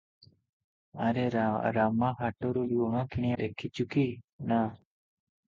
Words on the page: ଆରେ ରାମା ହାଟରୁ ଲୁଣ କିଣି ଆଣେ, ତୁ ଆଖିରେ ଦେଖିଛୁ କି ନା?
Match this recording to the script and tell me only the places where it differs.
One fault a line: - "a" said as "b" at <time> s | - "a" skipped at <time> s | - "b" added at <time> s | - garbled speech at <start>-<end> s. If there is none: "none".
- "ଆଣେ ତୁ ଆଖିରେ" skipped at 3.3 s